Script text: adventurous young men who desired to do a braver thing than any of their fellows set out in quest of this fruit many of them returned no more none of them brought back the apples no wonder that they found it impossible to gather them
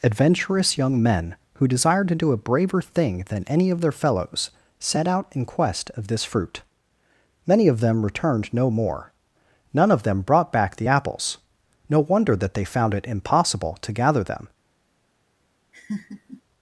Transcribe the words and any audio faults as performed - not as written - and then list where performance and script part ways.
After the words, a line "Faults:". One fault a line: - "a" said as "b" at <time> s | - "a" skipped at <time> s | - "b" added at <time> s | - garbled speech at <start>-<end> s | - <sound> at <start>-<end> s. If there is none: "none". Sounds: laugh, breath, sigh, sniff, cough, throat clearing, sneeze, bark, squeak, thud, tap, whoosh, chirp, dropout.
adventurous young men who desired to do a braver thing than any of their fellows set out in quest of this fruit many of them returned no more none of them brought back the apples no wonder that they found it impossible to gather them
Faults:
- laugh at 15.7-16.4 s